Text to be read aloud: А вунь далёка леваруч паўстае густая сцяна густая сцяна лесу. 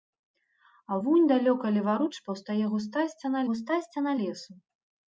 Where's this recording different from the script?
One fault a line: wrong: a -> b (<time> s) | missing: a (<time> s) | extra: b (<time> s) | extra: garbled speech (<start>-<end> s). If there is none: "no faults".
no faults